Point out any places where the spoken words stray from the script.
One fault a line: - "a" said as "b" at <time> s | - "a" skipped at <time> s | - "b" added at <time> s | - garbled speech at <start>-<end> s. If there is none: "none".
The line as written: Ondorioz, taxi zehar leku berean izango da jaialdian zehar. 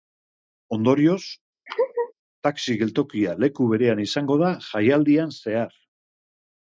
- "zehar" said as "geltokia" at 2.8 s